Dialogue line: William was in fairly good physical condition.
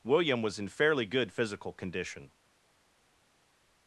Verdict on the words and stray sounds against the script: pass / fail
pass